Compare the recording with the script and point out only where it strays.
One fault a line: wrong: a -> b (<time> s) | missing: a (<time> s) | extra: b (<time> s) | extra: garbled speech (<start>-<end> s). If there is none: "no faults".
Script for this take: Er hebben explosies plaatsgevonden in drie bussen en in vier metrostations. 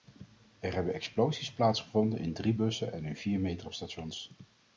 no faults